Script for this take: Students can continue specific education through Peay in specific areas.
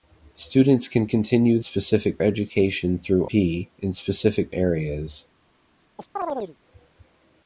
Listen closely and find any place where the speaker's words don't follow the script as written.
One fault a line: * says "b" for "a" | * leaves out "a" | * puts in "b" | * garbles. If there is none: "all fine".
all fine